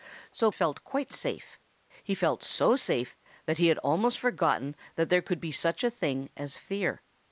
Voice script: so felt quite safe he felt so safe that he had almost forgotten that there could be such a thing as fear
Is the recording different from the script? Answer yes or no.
no